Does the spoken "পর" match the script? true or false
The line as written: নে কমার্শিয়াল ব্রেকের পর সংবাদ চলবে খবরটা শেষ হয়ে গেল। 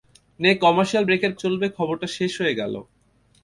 false